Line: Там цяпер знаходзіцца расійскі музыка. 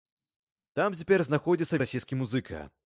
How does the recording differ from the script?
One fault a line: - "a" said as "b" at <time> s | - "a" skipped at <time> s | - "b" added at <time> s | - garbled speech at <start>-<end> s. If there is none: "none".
none